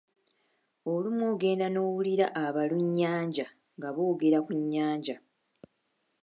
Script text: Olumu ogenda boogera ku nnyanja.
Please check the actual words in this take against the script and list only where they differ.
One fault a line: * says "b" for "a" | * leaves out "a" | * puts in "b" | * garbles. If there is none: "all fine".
* puts in "n'owulira abalunnyanja nga"